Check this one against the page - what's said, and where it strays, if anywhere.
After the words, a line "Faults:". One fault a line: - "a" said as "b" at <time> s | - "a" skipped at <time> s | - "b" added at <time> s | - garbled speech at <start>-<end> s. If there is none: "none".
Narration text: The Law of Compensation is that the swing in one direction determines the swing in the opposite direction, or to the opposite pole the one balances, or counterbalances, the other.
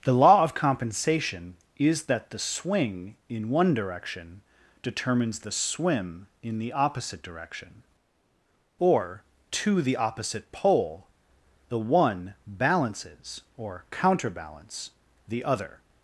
The Law of Compensation is that the swing in one direction determines the swim in the opposite direction, or to the opposite pole the one balances, or counterbalance, the other.
Faults:
- "swing" said as "swim" at 5.5 s
- "counterbalances" said as "counterbalance" at 13.9 s